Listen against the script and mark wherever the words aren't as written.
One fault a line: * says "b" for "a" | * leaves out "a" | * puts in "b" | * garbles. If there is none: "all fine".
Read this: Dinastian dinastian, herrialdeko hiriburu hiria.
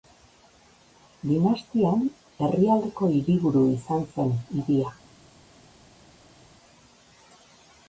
* leaves out "dinastian"
* puts in "izan zen"